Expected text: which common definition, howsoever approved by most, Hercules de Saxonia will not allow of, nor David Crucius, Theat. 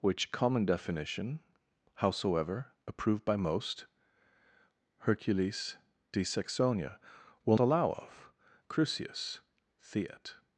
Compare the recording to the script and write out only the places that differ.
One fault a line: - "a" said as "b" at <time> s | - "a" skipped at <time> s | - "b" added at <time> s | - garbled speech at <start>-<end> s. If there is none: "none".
- "not" skipped at 7.6 s
- "nor David" skipped at 8.3 s